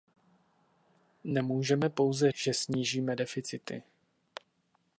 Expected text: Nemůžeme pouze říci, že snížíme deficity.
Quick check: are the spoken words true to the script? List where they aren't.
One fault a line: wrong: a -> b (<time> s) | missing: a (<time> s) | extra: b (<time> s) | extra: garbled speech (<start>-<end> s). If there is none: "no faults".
missing: říci (2.3 s)